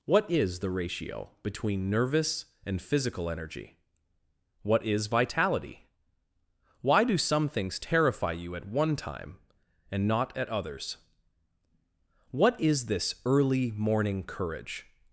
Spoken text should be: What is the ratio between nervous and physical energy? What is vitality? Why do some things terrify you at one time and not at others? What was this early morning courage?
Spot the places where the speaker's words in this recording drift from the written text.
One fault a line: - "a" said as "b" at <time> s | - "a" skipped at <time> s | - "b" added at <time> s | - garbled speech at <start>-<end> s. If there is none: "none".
- "was" said as "is" at 12.6 s